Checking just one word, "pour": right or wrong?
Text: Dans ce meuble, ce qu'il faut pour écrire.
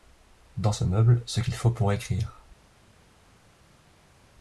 right